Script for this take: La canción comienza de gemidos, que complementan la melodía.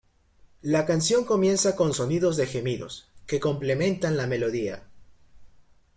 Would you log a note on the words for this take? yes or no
yes